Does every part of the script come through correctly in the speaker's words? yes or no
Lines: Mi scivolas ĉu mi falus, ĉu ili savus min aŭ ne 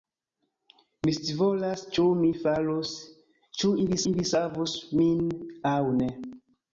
no